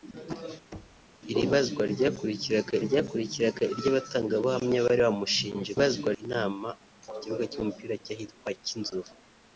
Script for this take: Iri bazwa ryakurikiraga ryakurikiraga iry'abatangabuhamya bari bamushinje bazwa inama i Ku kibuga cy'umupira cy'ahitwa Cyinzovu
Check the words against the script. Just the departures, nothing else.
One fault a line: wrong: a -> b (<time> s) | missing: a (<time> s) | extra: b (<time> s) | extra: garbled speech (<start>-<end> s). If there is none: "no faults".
no faults